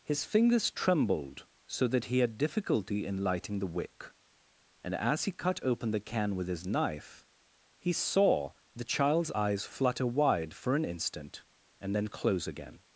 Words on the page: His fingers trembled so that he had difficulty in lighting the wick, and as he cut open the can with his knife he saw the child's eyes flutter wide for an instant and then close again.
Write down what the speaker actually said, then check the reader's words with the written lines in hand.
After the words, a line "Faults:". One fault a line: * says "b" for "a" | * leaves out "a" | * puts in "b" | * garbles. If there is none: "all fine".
His fingers trembled so that he had difficulty in lighting the wick, and as he cut open the can with his knife he saw the child's eyes flutter wide for an instant and then close again.
Faults:
all fine